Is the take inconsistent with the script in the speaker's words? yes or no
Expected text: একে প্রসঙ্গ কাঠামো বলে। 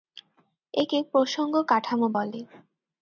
no